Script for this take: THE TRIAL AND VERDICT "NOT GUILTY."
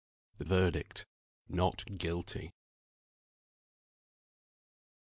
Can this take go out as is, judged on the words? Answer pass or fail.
fail